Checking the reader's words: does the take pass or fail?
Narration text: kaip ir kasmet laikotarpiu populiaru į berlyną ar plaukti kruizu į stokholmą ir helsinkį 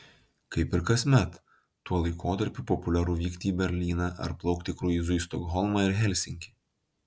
fail